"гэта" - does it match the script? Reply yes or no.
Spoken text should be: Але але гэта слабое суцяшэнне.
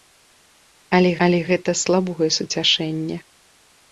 yes